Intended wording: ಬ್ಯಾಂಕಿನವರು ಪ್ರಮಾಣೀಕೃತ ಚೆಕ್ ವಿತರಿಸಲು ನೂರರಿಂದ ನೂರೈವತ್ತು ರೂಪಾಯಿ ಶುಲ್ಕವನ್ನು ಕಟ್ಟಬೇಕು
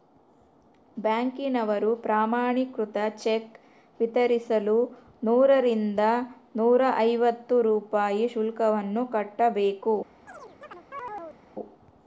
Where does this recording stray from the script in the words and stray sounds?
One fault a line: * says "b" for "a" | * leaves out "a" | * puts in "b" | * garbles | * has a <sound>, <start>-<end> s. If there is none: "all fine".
* has a chirp, 10.3-11.4 s